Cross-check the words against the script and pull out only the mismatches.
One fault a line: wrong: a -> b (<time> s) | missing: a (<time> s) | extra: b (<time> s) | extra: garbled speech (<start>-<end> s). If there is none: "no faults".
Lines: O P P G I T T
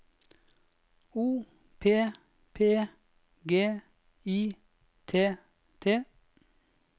no faults